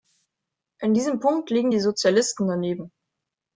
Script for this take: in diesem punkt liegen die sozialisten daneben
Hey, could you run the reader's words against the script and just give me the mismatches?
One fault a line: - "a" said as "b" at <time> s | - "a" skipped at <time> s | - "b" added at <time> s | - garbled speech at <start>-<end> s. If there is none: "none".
none